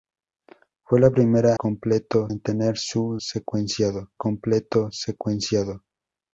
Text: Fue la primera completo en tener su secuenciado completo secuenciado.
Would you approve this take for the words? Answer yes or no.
yes